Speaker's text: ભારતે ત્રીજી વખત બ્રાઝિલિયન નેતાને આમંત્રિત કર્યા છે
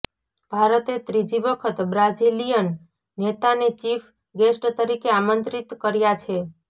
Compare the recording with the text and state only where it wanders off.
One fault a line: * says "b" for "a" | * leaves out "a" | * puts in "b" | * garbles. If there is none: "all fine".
* puts in "ચીફ ગેસ્ટ તરીકે"